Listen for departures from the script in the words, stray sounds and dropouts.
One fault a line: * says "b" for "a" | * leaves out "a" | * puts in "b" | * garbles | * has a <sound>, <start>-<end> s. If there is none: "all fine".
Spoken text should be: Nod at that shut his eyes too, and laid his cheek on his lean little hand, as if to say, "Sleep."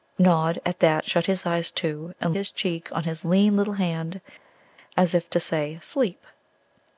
* leaves out "laid"